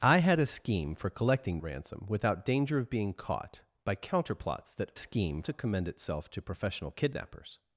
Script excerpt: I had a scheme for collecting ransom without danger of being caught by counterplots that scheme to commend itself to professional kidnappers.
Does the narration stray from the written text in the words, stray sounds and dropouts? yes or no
no